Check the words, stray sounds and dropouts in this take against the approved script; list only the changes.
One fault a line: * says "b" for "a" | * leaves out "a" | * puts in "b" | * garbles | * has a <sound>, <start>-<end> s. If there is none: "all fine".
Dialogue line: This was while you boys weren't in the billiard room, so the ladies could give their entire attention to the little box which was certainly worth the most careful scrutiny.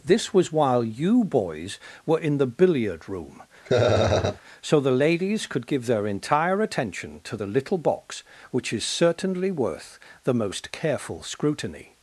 * says "were" for "weren't"
* has a laugh, 3.7-4.4 s
* says "is" for "was"